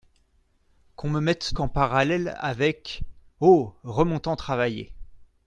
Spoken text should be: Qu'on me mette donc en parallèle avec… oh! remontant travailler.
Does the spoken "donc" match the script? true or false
false